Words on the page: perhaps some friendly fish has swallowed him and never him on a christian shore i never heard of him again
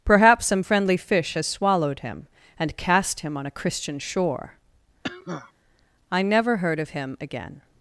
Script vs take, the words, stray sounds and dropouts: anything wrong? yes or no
yes